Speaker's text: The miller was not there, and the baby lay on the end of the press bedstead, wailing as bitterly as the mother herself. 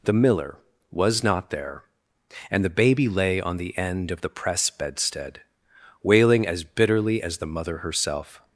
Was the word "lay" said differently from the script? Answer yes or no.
no